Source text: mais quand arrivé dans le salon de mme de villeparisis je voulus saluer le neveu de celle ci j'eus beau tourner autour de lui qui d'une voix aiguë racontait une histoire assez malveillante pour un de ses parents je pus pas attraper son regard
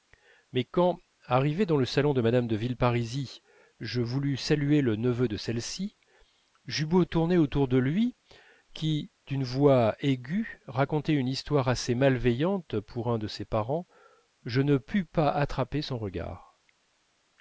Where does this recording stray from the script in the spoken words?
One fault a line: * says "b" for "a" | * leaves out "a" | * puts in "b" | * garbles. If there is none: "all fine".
* puts in "ne"